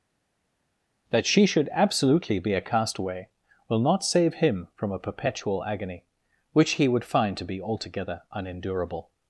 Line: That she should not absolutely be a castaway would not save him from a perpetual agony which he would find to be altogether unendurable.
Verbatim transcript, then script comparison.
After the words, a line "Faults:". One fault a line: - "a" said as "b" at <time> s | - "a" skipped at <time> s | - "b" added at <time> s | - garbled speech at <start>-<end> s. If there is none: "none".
That she should absolutely be a castaway will not save him from a perpetual agony which he would find to be altogether unendurable.
Faults:
- "not" skipped at 1.7 s
- "would" said as "will" at 3.7 s